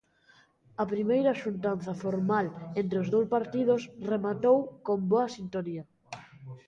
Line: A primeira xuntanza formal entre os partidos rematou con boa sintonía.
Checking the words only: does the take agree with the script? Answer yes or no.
no